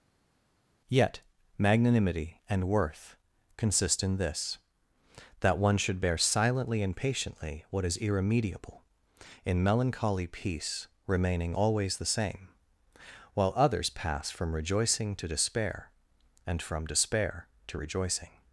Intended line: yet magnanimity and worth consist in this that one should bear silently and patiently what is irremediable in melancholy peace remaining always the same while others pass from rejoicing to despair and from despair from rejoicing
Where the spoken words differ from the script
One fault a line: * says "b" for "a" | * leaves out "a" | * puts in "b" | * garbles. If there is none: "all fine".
* says "to" for "from"